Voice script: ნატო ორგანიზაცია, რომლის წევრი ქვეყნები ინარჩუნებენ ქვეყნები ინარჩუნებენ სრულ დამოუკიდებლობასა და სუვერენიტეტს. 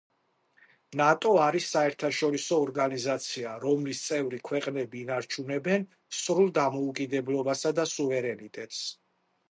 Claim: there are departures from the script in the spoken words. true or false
true